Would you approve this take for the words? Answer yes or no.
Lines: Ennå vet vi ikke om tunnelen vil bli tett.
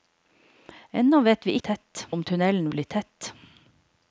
no